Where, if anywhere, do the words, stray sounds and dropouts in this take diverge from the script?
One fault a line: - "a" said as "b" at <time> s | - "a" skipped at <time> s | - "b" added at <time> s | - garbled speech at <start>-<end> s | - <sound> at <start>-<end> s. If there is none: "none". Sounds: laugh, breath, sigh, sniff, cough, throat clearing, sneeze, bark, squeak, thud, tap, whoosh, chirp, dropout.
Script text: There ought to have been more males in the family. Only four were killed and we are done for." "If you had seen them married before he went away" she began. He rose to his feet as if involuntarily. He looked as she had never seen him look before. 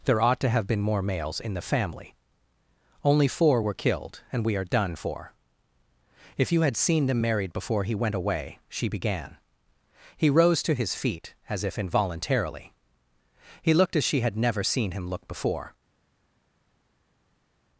none